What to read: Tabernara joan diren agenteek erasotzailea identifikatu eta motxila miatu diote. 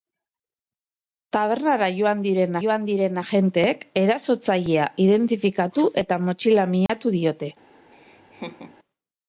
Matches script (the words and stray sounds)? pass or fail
fail